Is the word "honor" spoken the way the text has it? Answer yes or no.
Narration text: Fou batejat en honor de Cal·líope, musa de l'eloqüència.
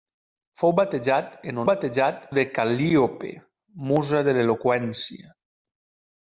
no